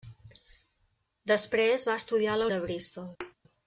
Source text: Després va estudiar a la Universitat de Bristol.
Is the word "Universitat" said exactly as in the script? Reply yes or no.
no